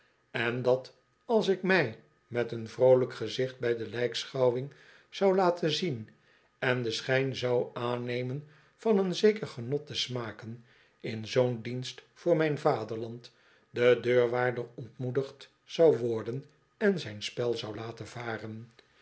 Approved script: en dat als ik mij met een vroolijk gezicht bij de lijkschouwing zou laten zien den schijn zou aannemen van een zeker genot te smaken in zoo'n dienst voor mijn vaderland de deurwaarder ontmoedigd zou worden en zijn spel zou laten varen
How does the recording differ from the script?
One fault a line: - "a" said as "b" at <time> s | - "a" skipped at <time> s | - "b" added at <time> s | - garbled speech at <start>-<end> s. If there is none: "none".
- "en" added at 6.6 s